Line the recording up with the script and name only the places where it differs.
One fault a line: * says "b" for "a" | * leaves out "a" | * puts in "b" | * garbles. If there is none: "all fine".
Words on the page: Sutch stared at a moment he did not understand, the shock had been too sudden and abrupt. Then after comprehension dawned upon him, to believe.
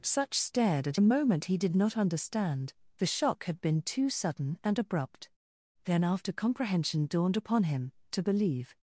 all fine